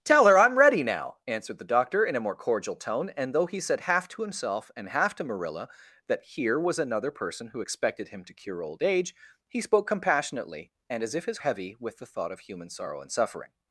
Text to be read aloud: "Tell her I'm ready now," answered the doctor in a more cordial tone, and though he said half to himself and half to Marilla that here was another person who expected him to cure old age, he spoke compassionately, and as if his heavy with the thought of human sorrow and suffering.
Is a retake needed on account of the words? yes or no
no